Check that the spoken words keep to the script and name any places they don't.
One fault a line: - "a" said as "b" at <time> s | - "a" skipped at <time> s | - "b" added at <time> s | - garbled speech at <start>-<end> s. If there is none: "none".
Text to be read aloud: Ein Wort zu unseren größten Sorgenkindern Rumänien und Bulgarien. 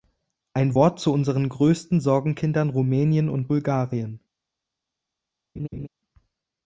none